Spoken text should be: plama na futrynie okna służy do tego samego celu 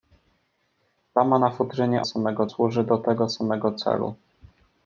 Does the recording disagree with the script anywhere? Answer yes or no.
yes